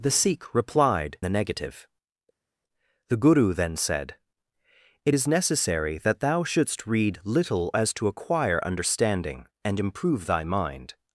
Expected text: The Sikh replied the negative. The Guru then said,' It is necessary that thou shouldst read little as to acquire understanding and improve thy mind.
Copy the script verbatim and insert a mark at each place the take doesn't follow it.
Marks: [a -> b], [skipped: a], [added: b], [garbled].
The Sikh replied the negative. The Guru then said,' It is necessary that thou shouldst read little as to acquire understanding and improve thy mind.